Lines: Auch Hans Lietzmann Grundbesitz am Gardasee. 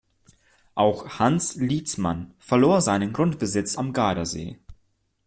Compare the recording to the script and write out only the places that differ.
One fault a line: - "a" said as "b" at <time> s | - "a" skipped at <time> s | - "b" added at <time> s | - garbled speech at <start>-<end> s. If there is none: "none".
- "verlor seinen" added at 2.4 s